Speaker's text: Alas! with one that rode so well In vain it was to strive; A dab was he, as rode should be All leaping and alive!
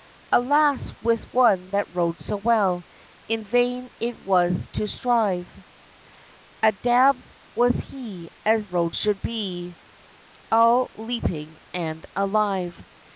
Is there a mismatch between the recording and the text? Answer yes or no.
no